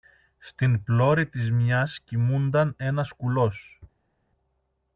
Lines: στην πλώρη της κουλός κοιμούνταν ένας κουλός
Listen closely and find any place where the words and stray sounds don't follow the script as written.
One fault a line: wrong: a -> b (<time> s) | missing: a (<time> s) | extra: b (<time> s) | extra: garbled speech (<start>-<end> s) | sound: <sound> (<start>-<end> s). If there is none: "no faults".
wrong: κουλός -> μιας (1.5 s)